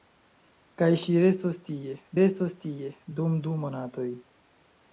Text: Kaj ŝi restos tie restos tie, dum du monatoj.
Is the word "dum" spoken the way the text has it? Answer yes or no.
yes